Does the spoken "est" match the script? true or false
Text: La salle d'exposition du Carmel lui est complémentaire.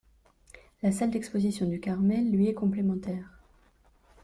true